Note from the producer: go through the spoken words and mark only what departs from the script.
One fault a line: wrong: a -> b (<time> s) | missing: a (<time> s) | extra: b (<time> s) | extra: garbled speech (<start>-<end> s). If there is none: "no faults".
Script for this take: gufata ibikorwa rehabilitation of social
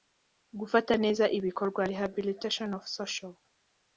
extra: neza (1.0 s)